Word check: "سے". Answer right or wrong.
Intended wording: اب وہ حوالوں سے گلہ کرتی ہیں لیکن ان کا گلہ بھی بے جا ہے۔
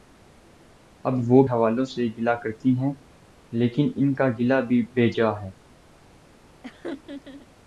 right